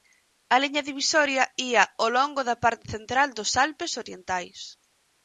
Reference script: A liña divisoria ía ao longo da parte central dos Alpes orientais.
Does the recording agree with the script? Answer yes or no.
yes